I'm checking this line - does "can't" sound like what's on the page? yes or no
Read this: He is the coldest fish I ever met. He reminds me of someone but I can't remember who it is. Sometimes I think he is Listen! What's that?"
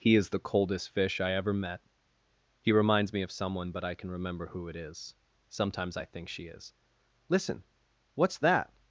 no